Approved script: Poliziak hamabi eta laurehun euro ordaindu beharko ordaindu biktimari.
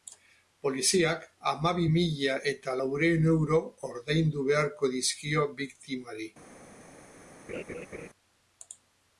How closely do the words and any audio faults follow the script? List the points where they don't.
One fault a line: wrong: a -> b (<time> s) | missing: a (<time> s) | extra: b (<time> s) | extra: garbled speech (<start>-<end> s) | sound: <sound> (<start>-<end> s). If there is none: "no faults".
extra: mila (1.9 s)
wrong: ordaindu -> dizkio (5.0 s)
sound: laugh (7.5-8.1 s)